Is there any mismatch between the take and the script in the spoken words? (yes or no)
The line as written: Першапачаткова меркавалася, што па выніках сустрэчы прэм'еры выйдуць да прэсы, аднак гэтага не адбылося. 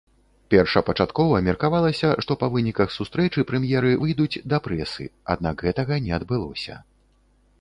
no